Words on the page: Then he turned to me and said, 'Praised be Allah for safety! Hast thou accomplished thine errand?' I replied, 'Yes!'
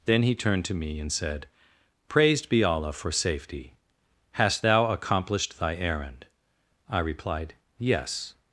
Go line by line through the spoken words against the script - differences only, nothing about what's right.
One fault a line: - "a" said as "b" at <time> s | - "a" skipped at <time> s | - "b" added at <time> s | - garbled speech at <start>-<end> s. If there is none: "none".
- "thine" said as "thy" at 5.6 s